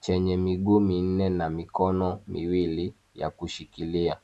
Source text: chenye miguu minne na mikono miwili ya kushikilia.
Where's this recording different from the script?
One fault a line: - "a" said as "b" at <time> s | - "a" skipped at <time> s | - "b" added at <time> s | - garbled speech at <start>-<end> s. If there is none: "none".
none